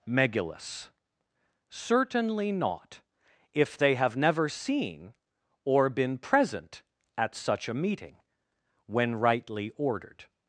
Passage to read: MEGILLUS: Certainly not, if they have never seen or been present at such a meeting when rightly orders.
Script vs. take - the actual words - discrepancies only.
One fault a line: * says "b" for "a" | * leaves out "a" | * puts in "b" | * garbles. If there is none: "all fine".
* says "ordered" for "orders"